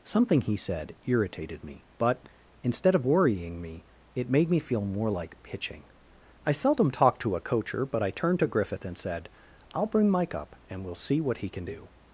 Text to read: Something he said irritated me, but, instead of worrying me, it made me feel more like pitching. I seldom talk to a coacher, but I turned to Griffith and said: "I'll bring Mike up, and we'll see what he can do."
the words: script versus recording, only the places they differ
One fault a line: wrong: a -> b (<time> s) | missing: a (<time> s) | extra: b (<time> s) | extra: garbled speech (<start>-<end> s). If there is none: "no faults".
no faults